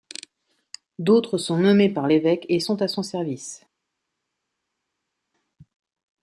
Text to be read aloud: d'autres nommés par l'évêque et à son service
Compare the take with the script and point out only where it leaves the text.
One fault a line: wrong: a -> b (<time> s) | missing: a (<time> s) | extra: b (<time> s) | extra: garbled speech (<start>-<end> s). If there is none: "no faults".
extra: sont (1.4 s)
extra: sont (2.6 s)